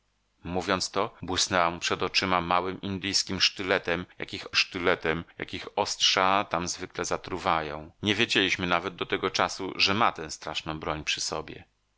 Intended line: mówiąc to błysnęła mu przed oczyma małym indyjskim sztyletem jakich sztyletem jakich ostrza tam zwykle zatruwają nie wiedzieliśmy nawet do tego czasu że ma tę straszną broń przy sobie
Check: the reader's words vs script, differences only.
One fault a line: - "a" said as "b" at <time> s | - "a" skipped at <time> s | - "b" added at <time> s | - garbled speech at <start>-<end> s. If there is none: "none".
none